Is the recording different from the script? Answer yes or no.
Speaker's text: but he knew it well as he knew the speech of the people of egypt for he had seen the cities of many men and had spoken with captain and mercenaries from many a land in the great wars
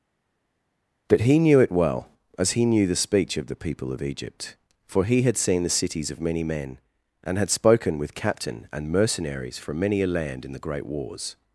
no